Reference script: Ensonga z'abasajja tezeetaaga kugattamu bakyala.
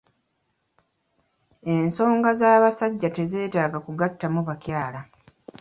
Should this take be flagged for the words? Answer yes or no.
no